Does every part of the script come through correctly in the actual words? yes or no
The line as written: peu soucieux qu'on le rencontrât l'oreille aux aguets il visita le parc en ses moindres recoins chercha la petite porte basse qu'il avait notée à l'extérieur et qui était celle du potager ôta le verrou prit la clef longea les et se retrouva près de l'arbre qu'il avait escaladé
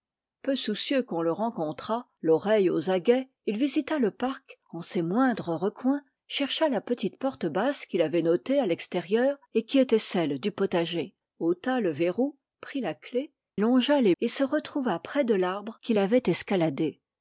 yes